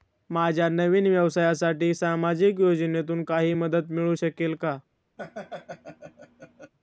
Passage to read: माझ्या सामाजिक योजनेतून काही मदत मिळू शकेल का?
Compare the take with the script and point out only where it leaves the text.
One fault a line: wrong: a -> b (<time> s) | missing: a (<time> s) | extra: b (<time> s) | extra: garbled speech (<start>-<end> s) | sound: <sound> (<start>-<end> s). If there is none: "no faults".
extra: नवीन व्यवसायासाठी (0.7 s)
sound: laugh (5.2-6.7 s)